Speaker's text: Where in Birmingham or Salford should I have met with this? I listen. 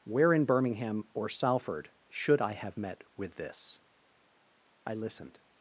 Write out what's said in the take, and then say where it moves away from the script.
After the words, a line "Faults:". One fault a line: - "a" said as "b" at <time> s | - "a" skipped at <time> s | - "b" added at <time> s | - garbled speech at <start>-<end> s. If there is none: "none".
Where in Birmingham or Salford should I have met with this? I listened.
Faults:
- "listen" said as "listened" at 4.9 s